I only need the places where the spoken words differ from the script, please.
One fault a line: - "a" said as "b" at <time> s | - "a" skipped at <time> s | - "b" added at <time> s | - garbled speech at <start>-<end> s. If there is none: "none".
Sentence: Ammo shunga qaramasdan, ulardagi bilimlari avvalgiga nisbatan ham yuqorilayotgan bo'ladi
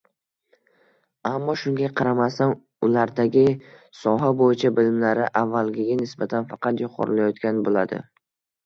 - "soha bo'yicha" added at 4.0 s
- "ham" said as "faqat" at 6.5 s